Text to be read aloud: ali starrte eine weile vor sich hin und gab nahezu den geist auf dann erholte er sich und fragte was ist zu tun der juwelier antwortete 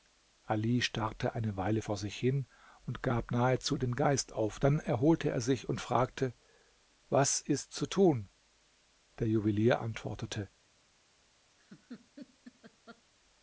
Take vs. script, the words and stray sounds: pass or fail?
fail